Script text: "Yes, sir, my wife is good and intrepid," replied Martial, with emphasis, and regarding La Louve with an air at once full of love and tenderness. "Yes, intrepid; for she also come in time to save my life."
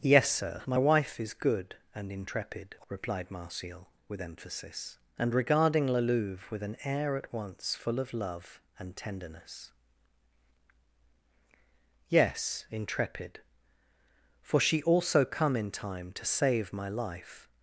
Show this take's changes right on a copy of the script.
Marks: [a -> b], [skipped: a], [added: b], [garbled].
"Yes, sir, my wife is good and intrepid," replied Martial, with emphasis, and regarding La Louve with an air at once full of love and tenderness. "Yes, intrepid; for she also come in time to save my life."